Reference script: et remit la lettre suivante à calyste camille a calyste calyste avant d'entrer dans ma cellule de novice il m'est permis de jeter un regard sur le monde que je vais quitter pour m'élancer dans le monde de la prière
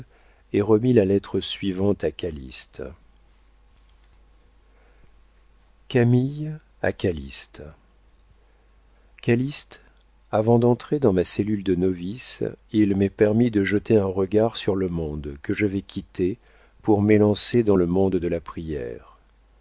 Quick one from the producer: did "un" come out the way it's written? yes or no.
yes